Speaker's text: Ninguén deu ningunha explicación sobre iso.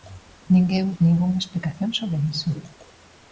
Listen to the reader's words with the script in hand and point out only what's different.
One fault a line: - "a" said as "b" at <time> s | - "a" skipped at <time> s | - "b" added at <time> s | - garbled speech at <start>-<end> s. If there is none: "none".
- "deu" skipped at 0.8 s